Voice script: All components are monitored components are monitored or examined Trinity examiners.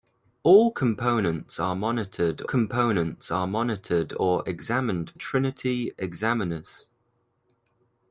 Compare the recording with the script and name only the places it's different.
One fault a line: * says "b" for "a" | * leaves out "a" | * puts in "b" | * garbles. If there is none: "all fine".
all fine